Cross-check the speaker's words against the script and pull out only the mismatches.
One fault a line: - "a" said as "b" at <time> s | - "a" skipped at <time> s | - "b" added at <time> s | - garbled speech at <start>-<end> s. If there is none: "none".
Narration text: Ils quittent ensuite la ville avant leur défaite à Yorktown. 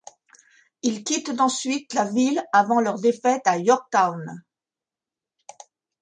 none